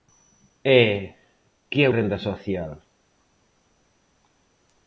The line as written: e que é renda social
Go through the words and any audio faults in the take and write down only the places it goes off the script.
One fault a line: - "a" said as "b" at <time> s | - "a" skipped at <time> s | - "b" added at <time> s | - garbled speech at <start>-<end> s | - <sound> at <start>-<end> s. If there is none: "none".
none